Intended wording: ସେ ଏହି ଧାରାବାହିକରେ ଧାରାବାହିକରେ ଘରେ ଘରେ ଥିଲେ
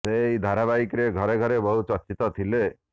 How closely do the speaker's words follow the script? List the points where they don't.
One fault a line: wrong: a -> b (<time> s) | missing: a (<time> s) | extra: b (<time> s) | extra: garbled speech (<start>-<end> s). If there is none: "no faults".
wrong: ଧାରାବାହିକରେ -> ଘରେ (1.1 s)
wrong: ଘରେ -> ବହୁ ଚର୍ଚ୍ଚିତ (1.6 s)